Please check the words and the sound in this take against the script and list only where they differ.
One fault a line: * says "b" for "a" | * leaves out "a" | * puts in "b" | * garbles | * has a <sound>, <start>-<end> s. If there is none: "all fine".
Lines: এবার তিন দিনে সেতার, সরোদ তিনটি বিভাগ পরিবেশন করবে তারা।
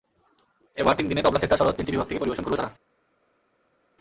* puts in "তবলা"
* puts in "থেকে"